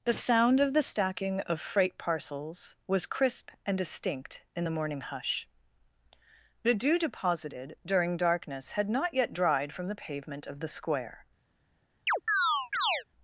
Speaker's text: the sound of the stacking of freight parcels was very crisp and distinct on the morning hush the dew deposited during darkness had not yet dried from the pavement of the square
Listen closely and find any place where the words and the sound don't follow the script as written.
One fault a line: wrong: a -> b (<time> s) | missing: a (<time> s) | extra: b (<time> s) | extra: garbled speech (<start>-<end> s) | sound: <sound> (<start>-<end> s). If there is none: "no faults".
missing: very (3.0 s)
wrong: on -> in (4.5 s)
sound: chirp (12.1-13.0 s)